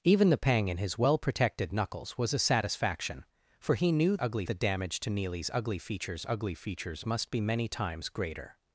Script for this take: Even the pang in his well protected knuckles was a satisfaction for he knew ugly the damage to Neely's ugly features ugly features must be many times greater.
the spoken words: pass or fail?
pass